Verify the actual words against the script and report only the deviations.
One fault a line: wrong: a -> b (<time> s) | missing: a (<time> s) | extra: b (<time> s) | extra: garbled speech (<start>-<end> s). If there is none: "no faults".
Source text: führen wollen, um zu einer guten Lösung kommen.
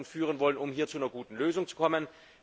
extra: hier (0.7 s)
extra: zu (1.7 s)